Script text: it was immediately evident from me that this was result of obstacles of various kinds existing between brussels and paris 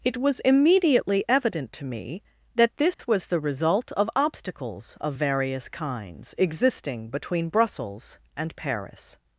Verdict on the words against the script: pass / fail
fail